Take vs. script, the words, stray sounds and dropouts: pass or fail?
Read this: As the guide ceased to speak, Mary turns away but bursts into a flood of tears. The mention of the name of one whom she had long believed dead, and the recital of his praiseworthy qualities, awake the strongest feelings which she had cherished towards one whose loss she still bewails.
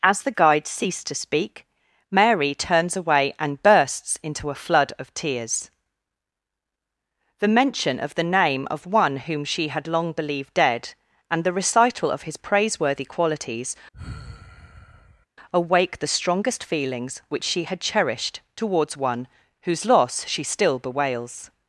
fail